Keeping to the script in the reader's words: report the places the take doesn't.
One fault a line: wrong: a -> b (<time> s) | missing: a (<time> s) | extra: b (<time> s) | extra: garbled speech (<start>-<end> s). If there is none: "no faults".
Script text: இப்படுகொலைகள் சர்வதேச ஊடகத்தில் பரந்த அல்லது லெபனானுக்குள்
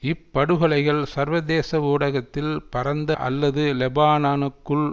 no faults